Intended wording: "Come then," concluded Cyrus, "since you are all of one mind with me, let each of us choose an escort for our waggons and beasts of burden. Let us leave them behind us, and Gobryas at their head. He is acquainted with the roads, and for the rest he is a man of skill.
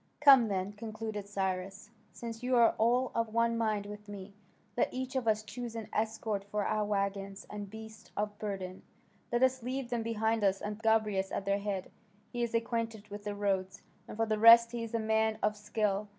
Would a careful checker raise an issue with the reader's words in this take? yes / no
no